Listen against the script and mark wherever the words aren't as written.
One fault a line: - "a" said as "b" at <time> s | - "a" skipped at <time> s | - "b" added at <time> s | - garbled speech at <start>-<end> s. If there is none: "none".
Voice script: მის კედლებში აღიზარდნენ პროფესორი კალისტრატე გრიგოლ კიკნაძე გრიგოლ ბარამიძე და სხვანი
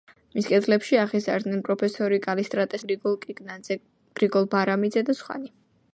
none